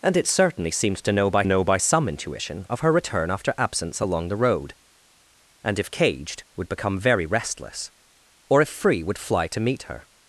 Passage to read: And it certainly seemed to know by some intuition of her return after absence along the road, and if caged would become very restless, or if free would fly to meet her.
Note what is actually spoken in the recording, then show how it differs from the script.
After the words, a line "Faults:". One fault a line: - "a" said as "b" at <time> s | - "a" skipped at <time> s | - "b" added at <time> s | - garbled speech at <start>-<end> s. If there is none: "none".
And it certainly seemed to know by know by some intuition of her return after absence along the road, and if caged would become very restless, or if free would fly to meet her.
Faults:
- "know by" added at 1.4 s